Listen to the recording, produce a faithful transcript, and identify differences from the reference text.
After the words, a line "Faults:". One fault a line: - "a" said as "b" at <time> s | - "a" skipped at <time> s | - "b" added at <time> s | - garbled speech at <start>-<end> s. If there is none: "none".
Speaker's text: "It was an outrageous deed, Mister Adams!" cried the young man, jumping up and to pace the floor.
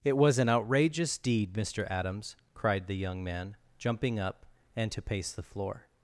"It was an outrageous deed, Mister Adams!" cried the young man, jumping up and to pace the floor.
Faults:
none